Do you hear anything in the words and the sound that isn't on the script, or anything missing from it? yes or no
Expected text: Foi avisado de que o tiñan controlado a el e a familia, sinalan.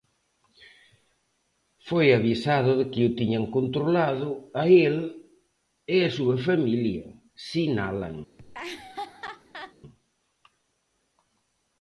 yes